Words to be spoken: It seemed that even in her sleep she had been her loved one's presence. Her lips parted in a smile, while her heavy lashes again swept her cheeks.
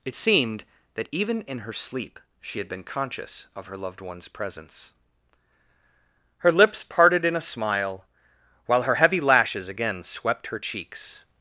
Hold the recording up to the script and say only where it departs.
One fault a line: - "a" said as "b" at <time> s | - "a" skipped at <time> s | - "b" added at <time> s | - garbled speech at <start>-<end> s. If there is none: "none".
- "conscious of" added at 2.8 s